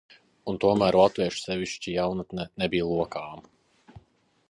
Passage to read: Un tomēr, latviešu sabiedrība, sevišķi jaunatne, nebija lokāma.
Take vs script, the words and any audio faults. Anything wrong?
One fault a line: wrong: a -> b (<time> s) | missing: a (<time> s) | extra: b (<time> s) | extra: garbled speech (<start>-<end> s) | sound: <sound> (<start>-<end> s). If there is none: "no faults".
missing: sabiedrība (1.4 s)